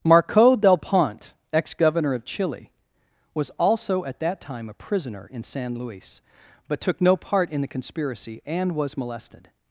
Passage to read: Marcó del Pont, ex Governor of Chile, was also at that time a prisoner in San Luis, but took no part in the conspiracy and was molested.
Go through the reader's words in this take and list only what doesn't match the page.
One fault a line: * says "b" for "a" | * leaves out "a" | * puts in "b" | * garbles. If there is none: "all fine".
all fine